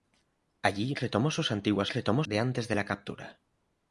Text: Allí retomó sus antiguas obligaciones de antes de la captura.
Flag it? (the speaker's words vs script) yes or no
yes